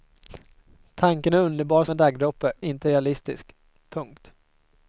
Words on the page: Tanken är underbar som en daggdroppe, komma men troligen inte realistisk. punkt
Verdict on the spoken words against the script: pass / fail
fail